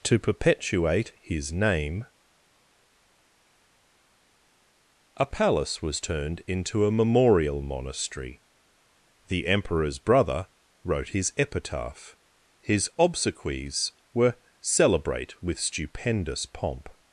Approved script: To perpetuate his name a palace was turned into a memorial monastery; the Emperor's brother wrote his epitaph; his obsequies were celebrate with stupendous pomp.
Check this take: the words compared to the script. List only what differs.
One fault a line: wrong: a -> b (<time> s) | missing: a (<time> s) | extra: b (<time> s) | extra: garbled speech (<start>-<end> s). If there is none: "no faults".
no faults